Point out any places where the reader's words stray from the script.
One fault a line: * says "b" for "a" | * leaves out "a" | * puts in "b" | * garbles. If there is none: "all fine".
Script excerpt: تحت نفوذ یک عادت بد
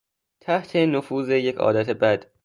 all fine